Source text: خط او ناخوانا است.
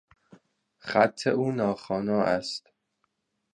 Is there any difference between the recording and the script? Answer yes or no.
no